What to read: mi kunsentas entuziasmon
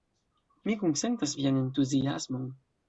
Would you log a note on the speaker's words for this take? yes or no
yes